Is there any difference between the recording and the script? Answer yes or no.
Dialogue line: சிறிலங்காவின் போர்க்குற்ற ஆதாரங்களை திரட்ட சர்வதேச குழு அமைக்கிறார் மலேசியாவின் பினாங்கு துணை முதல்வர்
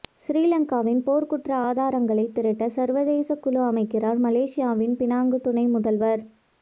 no